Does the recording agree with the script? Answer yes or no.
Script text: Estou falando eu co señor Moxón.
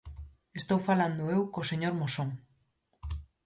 yes